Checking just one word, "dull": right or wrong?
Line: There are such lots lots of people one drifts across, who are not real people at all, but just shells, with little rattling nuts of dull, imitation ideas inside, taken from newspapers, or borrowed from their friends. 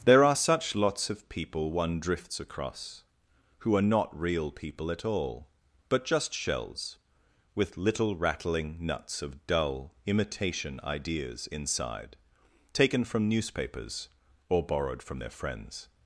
right